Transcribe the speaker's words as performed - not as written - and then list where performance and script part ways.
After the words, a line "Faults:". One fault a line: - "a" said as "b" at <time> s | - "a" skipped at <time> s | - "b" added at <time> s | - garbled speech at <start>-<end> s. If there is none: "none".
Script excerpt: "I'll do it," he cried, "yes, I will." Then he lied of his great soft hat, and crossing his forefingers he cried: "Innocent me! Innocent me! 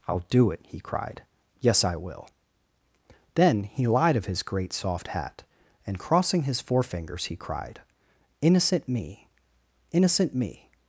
"I'll do it," he cried, "yes, I will." Then he lied of his great soft hat, and crossing his forefingers he cried: "Innocent me! Innocent me!
Faults:
none